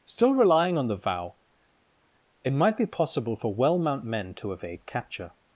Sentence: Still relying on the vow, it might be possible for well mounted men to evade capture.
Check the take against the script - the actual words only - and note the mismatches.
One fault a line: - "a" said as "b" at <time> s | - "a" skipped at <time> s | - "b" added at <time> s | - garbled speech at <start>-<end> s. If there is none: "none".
- "mounted" said as "mount" at 3.8 s